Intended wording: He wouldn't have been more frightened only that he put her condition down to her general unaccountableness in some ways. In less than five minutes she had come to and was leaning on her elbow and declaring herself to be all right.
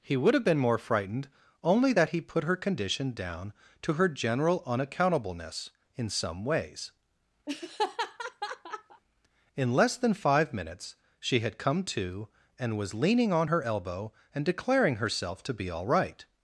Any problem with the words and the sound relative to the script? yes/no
yes